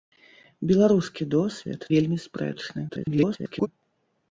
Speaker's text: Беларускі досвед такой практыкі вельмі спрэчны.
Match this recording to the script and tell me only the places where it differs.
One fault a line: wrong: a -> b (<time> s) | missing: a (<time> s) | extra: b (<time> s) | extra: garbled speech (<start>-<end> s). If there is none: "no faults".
missing: такой практыкі (1.9 s)
extra: garbled speech (2.9-3.7 s)